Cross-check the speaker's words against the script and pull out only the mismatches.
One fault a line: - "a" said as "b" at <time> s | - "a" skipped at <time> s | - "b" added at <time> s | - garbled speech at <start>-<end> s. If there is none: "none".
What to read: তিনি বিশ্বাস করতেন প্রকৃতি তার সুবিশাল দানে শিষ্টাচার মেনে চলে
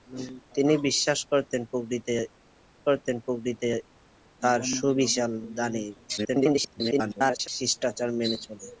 - "করতেন প্রকৃতি" added at 2.9 s
- garbled speech at 6.2-7.5 s